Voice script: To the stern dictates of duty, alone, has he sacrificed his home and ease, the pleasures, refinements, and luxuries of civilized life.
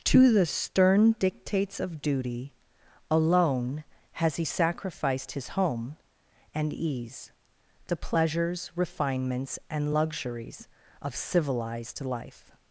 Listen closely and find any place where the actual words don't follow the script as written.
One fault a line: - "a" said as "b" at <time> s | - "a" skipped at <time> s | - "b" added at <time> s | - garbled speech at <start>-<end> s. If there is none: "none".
none